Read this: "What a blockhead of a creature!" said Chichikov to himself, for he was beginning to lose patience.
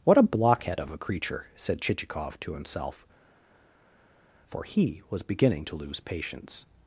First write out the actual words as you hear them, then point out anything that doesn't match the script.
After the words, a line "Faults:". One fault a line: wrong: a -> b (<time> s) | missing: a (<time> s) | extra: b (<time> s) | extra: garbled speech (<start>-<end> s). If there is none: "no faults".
"What a blockhead of a creature!" said Chichikov to himself, for he was beginning to lose patience.
Faults:
no faults